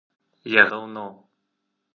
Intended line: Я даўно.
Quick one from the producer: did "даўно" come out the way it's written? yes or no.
yes